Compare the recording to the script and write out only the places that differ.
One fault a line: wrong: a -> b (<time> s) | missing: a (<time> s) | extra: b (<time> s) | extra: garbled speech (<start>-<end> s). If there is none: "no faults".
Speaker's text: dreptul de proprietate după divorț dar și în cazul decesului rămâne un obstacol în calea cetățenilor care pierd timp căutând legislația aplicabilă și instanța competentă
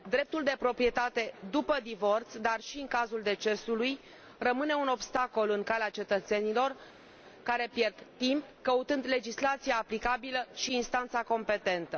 no faults